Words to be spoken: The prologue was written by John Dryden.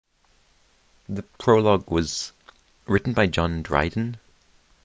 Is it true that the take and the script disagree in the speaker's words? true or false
false